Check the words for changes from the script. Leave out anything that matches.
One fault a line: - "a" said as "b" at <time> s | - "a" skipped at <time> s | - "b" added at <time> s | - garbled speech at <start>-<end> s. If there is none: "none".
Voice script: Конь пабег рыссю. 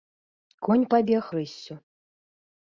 none